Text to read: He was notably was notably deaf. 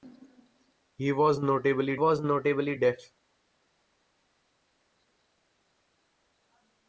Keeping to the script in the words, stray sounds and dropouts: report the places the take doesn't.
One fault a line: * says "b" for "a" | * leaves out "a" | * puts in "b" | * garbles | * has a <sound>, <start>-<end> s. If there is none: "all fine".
all fine